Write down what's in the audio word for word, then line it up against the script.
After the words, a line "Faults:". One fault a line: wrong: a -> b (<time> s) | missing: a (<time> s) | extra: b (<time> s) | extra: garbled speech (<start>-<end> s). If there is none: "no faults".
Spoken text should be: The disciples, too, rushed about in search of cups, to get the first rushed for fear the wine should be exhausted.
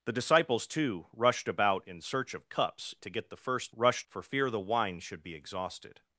The disciples, too, rushed about in search of cups, to get the first rushed for fear the wine should be exhausted.
Faults:
no faults